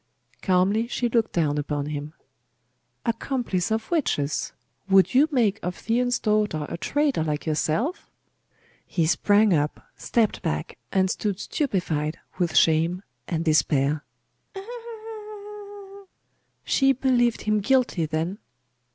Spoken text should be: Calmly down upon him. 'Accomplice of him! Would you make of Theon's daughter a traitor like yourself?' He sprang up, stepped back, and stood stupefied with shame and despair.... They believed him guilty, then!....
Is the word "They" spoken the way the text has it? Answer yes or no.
no